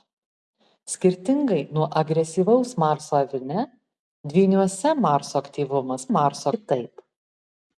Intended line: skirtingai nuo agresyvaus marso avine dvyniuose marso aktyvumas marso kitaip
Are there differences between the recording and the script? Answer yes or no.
no